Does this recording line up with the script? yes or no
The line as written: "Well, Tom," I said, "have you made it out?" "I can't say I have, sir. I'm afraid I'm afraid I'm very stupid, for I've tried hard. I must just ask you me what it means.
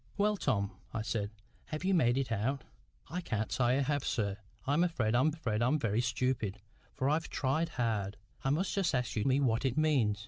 yes